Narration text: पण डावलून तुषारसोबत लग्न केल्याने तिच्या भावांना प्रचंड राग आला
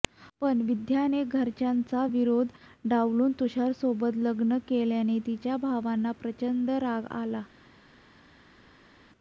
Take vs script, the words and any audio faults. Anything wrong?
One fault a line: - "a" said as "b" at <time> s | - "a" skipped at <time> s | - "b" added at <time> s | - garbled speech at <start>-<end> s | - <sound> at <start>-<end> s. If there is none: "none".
- "विद्याने घरच्यांचा विरोध" added at 0.7 s